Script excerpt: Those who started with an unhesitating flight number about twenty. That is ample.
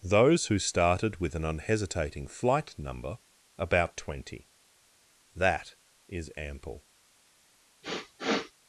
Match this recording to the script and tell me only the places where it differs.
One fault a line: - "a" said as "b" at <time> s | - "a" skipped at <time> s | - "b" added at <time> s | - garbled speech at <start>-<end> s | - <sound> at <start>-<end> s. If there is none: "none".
- sniff at 7.8-8.5 s